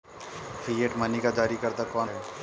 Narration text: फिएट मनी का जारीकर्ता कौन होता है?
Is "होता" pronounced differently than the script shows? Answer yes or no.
yes